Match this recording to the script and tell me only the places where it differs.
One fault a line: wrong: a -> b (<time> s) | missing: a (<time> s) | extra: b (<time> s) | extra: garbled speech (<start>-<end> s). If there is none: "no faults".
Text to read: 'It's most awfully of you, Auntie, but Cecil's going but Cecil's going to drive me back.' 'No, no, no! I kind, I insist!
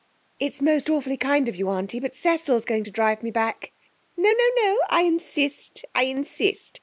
extra: kind (1.1 s)
missing: but Cecil's going (2.8 s)
wrong: kind -> insist (5.0 s)